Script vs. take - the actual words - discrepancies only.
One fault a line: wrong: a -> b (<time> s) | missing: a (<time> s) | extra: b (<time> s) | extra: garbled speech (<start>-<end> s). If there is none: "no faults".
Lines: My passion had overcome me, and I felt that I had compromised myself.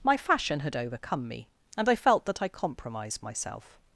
wrong: passion -> fashion (0.2 s)
missing: had (2.5 s)